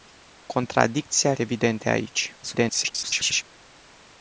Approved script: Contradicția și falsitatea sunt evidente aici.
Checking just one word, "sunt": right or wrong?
wrong